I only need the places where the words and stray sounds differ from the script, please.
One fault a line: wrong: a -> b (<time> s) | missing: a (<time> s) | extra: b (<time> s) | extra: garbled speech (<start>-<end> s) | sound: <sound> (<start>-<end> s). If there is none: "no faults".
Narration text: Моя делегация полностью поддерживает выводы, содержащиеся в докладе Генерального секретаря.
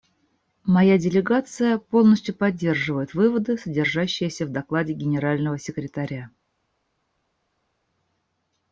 no faults